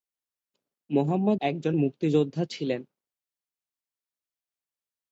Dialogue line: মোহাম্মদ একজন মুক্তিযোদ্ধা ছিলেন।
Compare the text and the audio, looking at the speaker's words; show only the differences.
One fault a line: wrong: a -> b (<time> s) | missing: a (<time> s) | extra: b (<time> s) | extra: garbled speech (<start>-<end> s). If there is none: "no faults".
no faults